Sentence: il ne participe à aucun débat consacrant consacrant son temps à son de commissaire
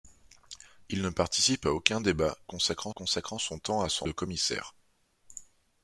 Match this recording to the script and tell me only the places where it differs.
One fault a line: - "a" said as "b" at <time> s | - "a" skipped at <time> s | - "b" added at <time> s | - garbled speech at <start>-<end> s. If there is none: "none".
none